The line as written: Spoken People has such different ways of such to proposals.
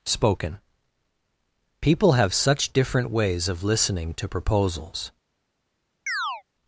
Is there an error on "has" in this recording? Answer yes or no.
yes